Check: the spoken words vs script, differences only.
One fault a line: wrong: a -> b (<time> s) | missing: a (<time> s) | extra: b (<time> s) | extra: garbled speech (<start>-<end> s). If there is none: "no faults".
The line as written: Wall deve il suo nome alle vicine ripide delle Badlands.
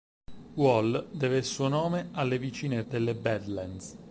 missing: ripide (2.8 s)